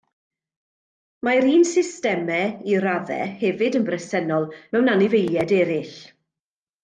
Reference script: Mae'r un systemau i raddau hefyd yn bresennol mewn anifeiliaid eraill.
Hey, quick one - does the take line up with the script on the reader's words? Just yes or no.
yes